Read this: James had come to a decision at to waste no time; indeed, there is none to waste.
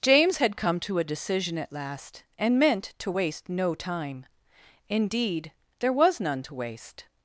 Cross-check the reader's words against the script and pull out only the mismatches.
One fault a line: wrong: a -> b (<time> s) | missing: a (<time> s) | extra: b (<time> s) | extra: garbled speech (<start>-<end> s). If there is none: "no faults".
extra: last and meant (1.7 s)
wrong: is -> was (5.9 s)